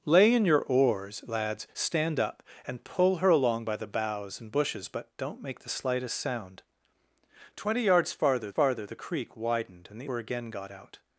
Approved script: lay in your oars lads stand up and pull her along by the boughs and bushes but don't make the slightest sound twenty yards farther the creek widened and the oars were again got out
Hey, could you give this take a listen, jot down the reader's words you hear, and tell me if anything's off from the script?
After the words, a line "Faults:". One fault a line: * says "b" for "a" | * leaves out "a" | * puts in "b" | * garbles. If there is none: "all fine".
lay in your oars lads stand up and pull her along by the boughs and bushes but don't make the slightest sound twenty yards farther farther the creek widened and the were again got out
Faults:
* puts in "farther"
* leaves out "oars"